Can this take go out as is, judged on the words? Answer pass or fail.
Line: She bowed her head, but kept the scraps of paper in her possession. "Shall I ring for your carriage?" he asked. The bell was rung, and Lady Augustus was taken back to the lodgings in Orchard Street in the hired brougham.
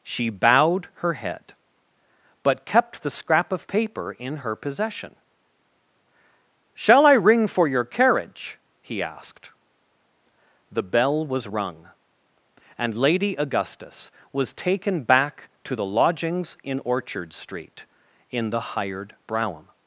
fail